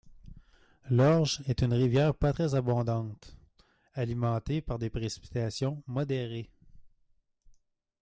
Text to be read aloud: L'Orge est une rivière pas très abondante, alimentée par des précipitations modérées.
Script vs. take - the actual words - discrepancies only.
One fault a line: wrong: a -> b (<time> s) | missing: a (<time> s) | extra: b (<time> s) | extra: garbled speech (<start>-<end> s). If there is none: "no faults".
no faults